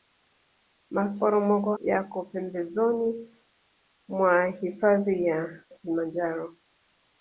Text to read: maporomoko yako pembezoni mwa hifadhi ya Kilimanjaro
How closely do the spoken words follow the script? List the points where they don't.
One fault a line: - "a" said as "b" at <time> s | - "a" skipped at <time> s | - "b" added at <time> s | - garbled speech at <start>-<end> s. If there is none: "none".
none